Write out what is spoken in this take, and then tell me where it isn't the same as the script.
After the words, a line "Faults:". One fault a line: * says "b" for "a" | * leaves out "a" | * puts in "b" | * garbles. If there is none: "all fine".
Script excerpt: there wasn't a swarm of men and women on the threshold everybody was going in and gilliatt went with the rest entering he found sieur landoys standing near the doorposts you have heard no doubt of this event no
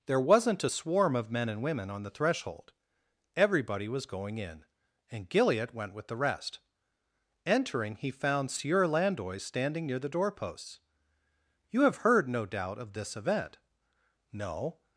there wasn't a swarm of men and women on the threshold everybody was going in and gilliatt went with the rest entering he found sieur landoys standing near the doorposts you have heard no doubt of this event no
Faults:
all fine